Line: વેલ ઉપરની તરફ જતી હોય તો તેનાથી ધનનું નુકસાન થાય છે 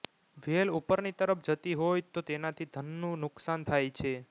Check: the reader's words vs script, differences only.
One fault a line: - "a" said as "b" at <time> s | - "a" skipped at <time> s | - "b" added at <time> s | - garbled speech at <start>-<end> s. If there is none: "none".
none